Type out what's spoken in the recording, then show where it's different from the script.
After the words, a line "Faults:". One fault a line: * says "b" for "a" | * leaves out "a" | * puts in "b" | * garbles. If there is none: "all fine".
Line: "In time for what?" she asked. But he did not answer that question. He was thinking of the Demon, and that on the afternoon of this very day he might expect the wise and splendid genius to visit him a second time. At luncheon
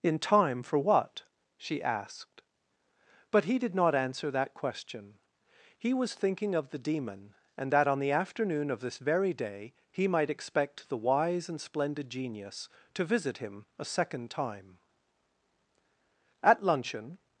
"In time for what?" she asked. But he did not answer that question. He was thinking of the Demon, and that on the afternoon of this very day he might expect the wise and splendid genius to visit him a second time. At luncheon
Faults:
all fine